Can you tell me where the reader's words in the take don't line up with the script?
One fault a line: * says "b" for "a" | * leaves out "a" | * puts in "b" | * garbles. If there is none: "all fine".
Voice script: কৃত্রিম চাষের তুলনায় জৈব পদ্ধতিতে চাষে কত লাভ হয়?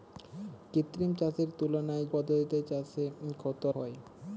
* leaves out "জৈব"
* leaves out "লাভ"